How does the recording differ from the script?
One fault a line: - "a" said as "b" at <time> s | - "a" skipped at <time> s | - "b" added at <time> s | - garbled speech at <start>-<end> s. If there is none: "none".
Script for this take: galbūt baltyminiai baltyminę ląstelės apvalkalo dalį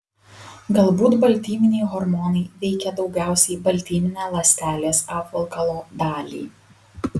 - "hormonai veikia daugiausiai" added at 1.9 s